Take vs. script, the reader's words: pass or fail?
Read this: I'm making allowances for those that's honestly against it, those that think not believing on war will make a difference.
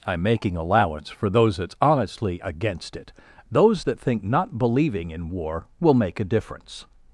fail